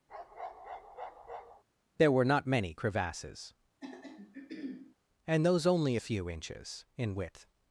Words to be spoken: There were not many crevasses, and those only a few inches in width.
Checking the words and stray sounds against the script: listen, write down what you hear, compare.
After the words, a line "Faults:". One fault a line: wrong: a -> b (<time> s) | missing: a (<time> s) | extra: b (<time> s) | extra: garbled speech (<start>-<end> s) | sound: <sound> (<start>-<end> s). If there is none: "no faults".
There were not many crevasses, and those only a few inches in width.
Faults:
sound: bark (0.1-1.6 s)
sound: throat clearing (3.8-5.0 s)